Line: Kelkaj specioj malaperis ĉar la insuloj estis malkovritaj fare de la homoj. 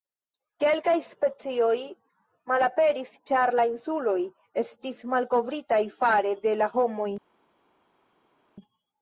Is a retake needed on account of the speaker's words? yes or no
no